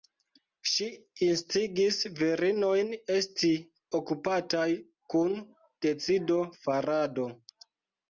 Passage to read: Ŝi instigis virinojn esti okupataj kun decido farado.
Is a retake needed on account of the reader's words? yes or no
no